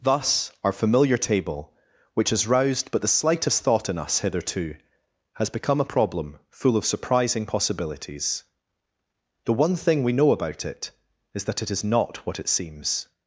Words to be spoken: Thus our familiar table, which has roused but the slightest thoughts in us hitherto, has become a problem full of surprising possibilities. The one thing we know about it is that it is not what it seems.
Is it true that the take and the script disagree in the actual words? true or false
true